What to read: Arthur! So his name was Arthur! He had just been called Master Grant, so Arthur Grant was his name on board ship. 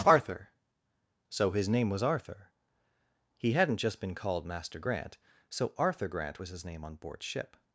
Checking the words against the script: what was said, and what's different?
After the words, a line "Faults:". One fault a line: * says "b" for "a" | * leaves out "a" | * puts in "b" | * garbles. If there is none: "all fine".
Arthur! So his name was Arthur! He hadn't just been called Master Grant, so Arthur Grant was his name on board ship.
Faults:
* says "hadn't" for "had"